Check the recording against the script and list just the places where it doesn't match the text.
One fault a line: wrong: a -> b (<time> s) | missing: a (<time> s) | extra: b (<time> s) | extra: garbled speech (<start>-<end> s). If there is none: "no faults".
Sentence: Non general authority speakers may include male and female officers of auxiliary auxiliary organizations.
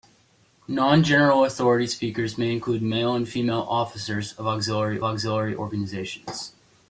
no faults